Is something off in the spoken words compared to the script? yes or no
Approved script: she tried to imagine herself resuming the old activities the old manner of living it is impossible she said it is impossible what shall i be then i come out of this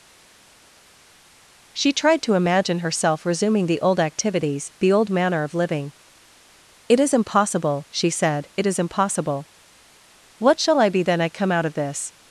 no